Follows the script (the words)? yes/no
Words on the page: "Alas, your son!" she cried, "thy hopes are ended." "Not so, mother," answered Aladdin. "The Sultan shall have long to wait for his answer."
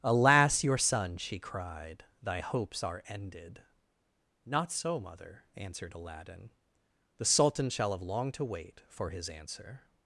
yes